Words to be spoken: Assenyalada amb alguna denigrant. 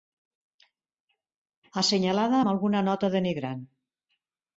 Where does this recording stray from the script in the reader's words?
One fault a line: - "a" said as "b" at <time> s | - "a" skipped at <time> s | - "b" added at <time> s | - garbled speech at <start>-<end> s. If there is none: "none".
- "nota" added at 2.9 s